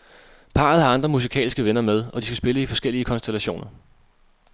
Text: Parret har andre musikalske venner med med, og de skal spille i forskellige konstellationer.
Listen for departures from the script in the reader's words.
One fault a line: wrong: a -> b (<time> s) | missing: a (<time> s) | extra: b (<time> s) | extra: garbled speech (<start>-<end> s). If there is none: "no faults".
missing: med (2.0 s)